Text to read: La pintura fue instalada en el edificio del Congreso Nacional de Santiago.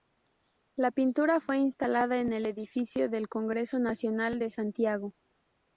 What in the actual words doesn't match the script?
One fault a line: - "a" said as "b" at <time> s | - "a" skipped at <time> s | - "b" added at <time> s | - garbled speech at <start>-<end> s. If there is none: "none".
none